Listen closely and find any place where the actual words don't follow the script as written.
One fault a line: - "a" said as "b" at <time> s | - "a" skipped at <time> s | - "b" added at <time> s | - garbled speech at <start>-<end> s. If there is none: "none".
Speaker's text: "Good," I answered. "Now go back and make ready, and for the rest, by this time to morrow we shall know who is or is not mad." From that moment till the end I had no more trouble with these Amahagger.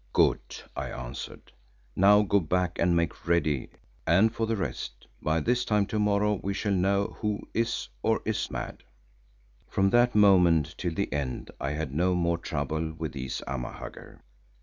- "not" skipped at 8.5 s